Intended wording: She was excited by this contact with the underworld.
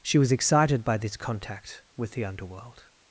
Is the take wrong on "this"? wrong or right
right